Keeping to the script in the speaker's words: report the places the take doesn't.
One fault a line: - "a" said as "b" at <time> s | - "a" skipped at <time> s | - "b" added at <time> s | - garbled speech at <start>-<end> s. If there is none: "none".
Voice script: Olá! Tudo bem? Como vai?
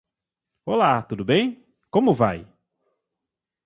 none